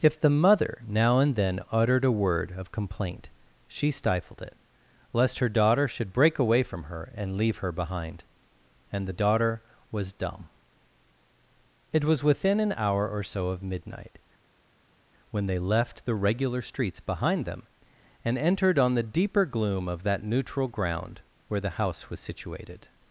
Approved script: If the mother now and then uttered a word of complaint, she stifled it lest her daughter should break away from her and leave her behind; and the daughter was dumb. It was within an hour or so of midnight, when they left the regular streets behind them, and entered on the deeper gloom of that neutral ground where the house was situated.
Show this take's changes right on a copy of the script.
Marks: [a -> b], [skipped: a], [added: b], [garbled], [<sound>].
If the mother now and then uttered a word of complaint, she stifled it lest her daughter should break away from her and leave her behind; and the daughter was dumb. It was within an hour or so of midnight, when they left the regular streets behind them, and entered on the deeper gloom of that neutral ground where the house was situated.